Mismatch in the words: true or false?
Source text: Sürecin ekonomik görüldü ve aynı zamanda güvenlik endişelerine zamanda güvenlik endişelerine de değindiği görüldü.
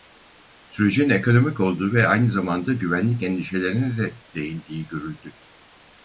true